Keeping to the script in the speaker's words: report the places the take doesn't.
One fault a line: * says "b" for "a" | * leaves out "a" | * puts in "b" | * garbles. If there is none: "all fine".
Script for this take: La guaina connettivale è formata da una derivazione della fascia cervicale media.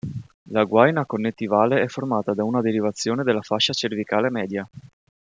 all fine